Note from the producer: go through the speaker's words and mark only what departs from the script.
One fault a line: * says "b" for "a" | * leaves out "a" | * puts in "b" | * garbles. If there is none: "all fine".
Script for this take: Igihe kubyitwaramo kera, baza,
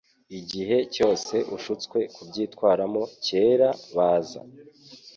* puts in "cyose ushutswe"